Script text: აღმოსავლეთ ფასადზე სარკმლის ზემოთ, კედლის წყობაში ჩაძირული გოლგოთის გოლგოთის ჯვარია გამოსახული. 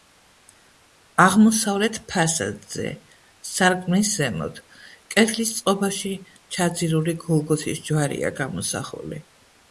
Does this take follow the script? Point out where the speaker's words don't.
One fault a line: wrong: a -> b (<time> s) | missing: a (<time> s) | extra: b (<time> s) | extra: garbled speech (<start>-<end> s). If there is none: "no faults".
missing: გოლგოთის (7.8 s)